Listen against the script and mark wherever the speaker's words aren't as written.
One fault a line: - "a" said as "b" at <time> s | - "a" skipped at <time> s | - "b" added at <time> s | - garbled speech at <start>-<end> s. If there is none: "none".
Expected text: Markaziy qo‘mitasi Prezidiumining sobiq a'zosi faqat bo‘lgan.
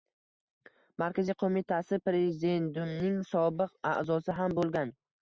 - "faqat" said as "ham" at 4.4 s